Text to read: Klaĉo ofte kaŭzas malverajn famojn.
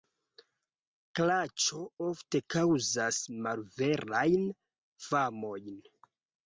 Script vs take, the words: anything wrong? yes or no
no